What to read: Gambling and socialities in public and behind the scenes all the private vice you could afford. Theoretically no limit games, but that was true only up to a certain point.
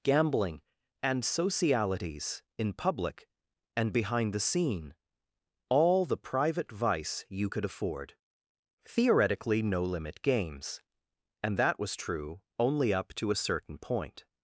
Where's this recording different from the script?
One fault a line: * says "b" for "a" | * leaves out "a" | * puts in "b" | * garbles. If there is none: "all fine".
* says "scene" for "scenes"
* says "and" for "but"